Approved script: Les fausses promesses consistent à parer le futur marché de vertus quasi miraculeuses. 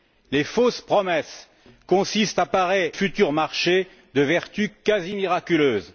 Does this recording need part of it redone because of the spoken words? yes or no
yes